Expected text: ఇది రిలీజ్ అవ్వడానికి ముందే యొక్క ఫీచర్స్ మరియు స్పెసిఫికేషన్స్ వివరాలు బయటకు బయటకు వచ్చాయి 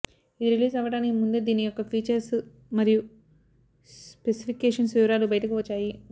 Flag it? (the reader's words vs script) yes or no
yes